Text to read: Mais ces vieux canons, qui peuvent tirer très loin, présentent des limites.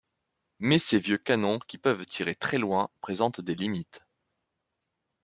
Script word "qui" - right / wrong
right